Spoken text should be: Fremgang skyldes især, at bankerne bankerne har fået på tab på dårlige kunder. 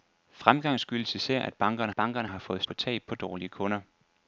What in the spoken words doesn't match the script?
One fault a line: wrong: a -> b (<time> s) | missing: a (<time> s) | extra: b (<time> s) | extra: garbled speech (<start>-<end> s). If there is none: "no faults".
no faults